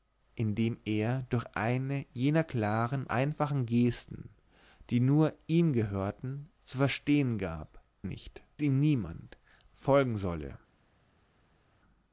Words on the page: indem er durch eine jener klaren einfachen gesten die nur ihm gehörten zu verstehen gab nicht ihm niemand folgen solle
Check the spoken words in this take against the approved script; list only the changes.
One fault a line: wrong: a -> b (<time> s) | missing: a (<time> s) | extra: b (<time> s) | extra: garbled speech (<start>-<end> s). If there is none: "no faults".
no faults